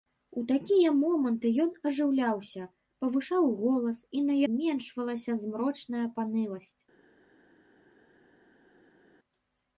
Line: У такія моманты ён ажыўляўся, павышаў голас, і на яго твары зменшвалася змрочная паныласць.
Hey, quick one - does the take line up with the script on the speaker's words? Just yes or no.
no